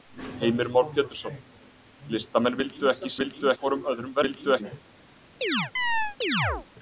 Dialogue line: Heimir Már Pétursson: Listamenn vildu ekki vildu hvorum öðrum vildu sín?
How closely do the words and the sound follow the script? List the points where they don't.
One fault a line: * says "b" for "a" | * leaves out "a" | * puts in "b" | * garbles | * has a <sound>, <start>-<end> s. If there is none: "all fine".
* has a chirp, 5.4-6.7 s